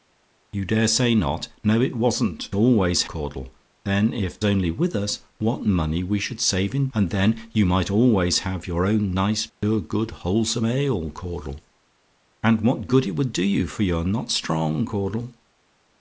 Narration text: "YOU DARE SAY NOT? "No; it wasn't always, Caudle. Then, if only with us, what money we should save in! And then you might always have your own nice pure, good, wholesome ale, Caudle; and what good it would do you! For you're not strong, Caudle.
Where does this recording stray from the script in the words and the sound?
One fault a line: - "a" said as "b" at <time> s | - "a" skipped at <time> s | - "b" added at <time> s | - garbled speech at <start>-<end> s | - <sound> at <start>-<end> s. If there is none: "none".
- dropout at 9.5-9.6 s